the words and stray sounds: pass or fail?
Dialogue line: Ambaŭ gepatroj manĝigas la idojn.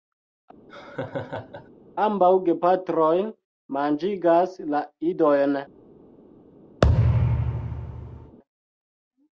fail